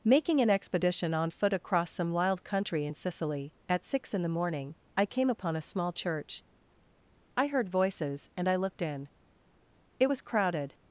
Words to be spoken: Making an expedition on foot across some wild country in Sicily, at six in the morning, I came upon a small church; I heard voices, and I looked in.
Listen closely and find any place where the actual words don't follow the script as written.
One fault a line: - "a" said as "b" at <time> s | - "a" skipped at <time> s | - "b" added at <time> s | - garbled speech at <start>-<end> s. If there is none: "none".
- "It was crowded" added at 10.0 s